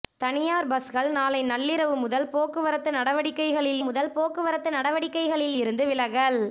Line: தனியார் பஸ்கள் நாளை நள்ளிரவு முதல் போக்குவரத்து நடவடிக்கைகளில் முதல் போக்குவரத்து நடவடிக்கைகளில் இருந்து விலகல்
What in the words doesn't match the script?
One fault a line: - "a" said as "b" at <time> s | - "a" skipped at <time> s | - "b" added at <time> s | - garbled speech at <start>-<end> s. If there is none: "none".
none